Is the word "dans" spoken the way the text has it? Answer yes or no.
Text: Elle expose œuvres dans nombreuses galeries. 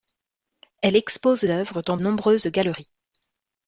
yes